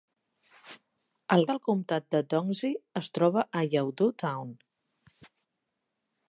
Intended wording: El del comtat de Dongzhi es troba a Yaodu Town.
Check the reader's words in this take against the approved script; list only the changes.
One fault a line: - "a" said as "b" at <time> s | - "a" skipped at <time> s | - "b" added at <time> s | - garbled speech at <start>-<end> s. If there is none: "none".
none